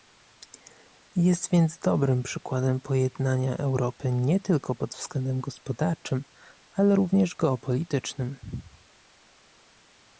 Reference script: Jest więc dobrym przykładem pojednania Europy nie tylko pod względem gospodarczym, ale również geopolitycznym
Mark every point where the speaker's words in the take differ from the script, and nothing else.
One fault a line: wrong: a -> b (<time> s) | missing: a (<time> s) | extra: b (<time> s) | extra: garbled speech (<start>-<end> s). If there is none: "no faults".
no faults